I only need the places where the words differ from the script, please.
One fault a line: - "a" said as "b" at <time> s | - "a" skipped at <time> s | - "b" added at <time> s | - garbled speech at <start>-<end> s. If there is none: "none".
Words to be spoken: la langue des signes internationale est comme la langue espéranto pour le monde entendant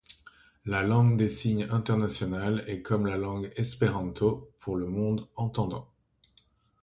none